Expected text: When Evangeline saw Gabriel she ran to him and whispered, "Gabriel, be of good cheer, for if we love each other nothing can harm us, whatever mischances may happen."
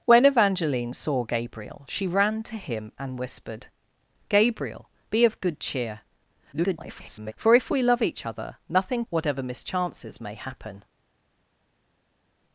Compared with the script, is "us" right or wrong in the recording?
wrong